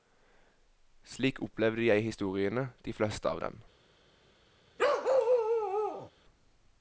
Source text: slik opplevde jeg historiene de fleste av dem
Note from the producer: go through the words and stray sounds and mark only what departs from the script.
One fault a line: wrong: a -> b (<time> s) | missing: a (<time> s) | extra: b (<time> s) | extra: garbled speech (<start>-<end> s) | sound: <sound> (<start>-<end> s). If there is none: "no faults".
sound: bark (4.8-6.1 s)